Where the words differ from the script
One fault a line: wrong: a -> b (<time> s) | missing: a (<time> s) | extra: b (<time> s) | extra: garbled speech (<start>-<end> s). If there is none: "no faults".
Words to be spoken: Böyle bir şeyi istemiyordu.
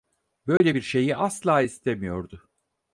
extra: asla (1.1 s)